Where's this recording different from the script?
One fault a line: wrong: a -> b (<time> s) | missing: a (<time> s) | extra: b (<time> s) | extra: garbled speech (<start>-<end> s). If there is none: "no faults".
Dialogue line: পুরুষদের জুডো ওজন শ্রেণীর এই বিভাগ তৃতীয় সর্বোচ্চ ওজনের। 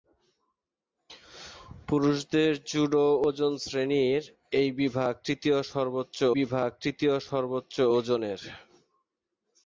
extra: বিভাগ তৃতীয় সর্বোচ্চ (6.4 s)